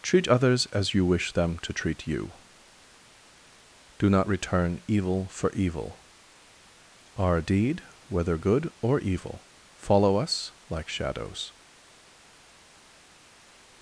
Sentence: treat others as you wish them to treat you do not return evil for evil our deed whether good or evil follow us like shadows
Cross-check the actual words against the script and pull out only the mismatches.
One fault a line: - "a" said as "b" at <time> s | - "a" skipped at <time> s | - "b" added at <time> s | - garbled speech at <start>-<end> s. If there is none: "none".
none